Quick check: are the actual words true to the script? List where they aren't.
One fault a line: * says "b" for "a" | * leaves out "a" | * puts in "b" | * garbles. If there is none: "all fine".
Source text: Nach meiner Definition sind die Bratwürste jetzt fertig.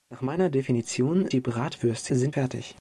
* leaves out "sind"
* says "sind" for "jetzt"